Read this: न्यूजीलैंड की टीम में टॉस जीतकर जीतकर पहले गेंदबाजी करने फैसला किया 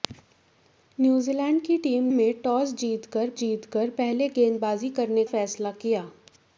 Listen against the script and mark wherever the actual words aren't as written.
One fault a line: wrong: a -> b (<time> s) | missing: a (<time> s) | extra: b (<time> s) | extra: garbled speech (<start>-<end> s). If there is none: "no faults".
no faults